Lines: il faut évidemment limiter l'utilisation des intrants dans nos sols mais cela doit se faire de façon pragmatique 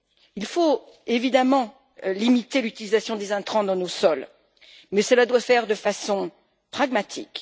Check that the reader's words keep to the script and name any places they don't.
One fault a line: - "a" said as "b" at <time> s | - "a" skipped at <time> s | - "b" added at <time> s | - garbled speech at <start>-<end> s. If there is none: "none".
- "se" skipped at 5.4 s